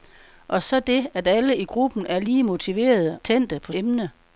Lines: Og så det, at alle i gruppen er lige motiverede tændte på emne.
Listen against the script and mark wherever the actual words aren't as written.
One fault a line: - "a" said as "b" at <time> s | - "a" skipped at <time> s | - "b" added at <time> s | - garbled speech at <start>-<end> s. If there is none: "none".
none